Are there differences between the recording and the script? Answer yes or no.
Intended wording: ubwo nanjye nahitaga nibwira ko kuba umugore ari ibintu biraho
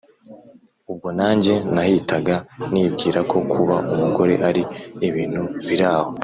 no